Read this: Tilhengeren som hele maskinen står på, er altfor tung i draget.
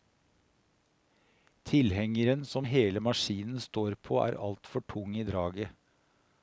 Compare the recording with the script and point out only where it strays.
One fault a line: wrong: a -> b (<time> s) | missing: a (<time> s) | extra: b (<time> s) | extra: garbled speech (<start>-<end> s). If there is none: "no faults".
no faults